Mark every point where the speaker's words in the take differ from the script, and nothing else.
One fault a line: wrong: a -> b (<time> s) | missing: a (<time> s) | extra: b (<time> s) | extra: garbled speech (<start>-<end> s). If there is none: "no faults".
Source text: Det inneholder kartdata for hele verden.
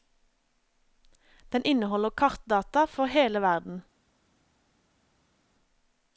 wrong: Det -> Den (1.5 s)